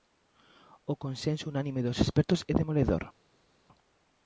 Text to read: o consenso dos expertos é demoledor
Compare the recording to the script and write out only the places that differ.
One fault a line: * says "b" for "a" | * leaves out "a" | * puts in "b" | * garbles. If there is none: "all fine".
* puts in "unánime"